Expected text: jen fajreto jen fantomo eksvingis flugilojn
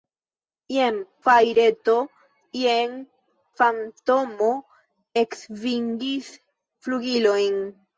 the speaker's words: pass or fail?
pass